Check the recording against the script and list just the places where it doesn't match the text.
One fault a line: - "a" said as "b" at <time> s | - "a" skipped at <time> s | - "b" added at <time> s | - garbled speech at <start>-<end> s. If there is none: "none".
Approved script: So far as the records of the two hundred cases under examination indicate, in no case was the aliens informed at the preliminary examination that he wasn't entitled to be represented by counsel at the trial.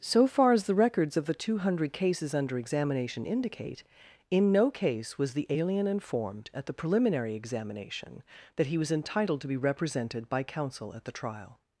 - "aliens" said as "alien" at 5.5 s
- "wasn't" said as "was" at 8.8 s